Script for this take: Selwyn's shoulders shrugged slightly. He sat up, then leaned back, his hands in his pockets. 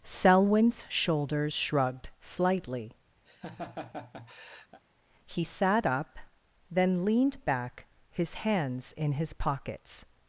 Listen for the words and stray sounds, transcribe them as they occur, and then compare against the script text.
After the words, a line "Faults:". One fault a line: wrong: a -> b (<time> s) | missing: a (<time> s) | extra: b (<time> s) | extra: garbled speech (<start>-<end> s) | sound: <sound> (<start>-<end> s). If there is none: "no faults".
Selwyn's shoulders shrugged slightly. He sat up, then leaned back, his hands in his pockets.
Faults:
sound: laugh (3.3-4.8 s)